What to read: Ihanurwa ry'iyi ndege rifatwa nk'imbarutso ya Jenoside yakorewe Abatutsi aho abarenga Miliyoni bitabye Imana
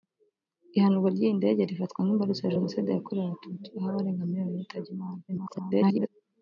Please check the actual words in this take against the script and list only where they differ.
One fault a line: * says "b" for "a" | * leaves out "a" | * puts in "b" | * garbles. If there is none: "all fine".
* garbles